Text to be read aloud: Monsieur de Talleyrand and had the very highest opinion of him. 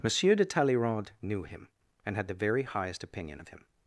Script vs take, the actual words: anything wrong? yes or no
yes